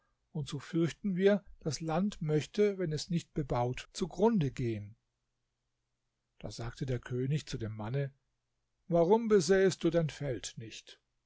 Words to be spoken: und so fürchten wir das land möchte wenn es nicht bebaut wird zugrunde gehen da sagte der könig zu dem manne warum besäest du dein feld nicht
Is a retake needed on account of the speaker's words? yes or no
yes